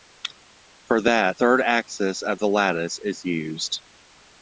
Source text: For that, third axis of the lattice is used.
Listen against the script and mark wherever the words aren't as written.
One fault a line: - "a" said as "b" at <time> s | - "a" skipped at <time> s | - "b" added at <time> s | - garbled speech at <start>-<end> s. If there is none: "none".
none